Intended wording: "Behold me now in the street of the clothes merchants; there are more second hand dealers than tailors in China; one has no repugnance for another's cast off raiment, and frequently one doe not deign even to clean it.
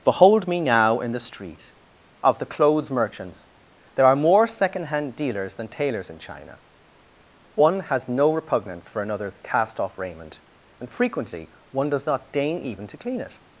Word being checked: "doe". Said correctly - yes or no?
no